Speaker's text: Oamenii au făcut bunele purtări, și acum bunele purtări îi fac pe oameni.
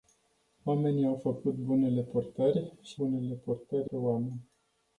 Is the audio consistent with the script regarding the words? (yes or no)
no